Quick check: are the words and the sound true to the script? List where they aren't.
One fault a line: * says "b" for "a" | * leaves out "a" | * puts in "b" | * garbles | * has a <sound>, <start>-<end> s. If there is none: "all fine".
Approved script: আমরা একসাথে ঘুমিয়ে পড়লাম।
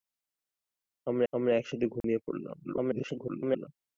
* puts in "আমরা"
* has a dropout, 2.0-2.0 s
* garbles